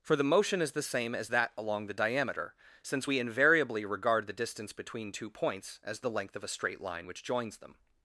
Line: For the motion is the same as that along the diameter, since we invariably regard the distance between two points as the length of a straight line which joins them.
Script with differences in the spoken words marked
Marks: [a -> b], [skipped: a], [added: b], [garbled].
For the motion is the same as that along the diameter, since we invariably regard the distance between two points as the length of a straight line which joins them.